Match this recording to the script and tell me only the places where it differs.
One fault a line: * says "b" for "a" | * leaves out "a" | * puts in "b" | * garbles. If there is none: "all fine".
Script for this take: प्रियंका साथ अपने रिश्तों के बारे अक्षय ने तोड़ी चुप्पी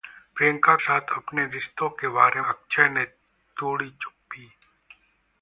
all fine